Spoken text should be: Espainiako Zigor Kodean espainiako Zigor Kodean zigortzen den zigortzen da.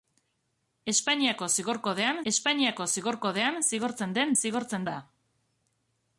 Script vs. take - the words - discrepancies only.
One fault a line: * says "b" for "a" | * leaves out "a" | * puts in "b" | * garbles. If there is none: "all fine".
all fine